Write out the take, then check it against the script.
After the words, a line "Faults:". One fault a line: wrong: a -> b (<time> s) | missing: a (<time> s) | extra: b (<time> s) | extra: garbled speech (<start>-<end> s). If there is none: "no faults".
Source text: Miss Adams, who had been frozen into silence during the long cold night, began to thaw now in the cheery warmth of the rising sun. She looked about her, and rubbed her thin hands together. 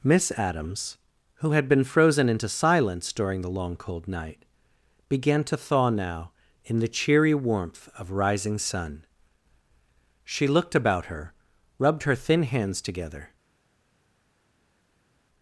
Miss Adams, who had been frozen into silence during the long cold night, began to thaw now in the cheery warmth of rising sun. She looked about her, rubbed her thin hands together.
Faults:
missing: the (8.1 s)
missing: and (11.3 s)